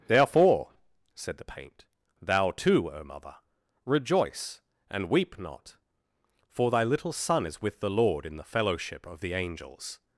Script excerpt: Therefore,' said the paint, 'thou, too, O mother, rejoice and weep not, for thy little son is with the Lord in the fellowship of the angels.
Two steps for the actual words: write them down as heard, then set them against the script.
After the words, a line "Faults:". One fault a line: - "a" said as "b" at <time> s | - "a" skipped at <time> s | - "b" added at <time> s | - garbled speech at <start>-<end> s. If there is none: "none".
Therefore,' said the paint, 'thou, too, O mother, rejoice and weep not, for thy little son is with the Lord in the fellowship of the angels.
Faults:
none